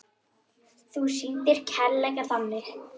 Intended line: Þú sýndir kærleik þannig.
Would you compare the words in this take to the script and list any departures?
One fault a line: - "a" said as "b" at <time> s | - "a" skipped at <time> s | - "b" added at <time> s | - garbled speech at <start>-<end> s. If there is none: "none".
none